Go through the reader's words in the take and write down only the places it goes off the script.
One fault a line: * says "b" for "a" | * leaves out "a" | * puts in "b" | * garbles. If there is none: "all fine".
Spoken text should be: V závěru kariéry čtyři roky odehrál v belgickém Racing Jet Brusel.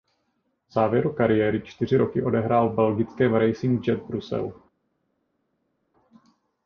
all fine